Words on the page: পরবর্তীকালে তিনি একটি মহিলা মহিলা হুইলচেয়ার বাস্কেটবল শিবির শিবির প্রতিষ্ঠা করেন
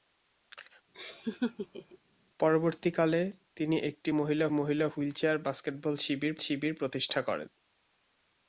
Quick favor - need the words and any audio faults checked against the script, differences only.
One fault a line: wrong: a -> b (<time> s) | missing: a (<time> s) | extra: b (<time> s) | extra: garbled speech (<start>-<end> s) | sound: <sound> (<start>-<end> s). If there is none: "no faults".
sound: laugh (0.9-2.0 s)